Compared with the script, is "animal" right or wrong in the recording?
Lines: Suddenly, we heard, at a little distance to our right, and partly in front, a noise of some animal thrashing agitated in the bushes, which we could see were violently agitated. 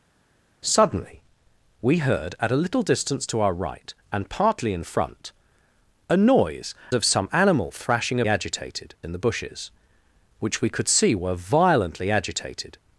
right